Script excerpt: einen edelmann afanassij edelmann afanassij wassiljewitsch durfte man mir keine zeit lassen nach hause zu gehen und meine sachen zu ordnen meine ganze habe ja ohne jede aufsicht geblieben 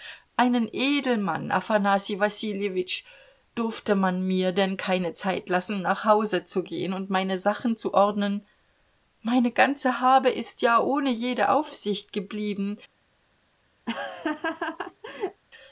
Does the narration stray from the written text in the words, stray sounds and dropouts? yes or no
yes